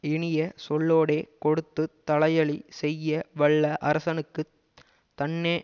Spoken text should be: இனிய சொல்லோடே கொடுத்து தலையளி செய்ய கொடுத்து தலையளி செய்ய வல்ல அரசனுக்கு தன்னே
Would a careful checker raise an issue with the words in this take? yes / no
yes